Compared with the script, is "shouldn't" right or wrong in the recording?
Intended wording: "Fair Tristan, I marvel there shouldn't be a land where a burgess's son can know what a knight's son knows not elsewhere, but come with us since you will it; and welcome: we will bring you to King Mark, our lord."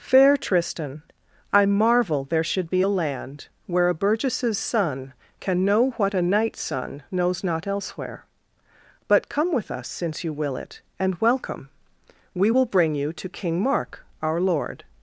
wrong